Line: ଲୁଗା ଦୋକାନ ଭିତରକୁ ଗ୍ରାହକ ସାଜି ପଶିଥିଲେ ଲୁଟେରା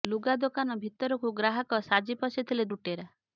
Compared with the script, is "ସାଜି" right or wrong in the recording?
right